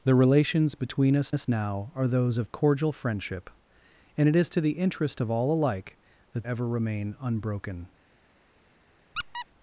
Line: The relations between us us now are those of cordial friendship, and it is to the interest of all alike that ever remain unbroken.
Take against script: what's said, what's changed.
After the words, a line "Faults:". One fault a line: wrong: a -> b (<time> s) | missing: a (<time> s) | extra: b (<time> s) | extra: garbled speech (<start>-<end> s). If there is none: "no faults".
The relations between us us now are those of cordial friendship, and it is to the interest of all alike that ever remain unbroken.
Faults:
no faults